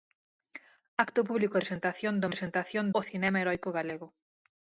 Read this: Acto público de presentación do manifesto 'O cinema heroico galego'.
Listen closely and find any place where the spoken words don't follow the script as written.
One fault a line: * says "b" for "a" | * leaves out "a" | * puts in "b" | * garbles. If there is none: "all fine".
* leaves out "de"
* says "presentación" for "manifesto"